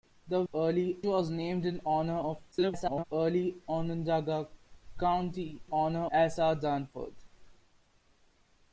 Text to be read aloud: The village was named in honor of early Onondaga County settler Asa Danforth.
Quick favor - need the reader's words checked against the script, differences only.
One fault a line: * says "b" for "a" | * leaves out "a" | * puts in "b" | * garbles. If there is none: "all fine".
* says "early" for "village"
* garbles
* says "honor" for "settler"